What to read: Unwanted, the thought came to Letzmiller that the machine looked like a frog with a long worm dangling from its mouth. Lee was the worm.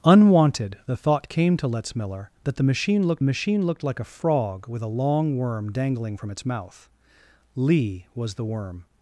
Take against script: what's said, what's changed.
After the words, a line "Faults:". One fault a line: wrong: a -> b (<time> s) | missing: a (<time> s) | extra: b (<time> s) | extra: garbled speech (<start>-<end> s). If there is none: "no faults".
Unwanted, the thought came to Letzmiller that the machine looked machine looked like a frog with a long worm dangling from its mouth. Lee was the worm.
Faults:
extra: machine looked (3.2 s)